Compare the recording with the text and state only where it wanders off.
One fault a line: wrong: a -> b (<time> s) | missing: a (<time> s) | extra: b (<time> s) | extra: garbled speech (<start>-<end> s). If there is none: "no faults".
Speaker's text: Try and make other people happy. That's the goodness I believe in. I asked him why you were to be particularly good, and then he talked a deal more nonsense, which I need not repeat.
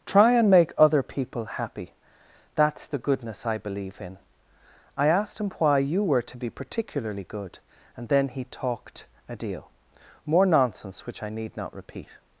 no faults